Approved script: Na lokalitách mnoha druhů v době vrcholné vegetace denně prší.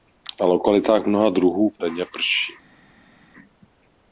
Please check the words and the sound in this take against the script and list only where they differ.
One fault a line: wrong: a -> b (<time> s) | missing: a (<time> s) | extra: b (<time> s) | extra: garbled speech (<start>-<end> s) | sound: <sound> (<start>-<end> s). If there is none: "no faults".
missing: době vrcholné vegetace (1.8 s)